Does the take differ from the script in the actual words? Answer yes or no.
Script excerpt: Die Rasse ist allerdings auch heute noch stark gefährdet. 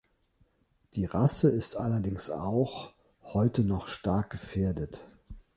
no